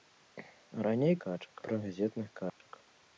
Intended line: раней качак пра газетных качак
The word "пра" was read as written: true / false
true